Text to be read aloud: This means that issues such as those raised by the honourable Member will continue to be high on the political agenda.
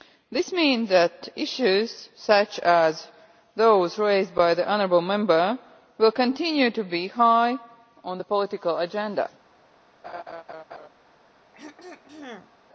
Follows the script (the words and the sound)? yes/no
no